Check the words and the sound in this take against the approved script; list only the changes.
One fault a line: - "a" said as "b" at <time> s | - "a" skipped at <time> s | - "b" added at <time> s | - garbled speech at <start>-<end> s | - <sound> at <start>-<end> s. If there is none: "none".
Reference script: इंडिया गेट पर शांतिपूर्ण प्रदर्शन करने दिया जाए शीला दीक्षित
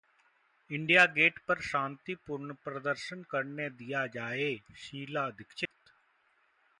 - dropout at 5.7-5.7 s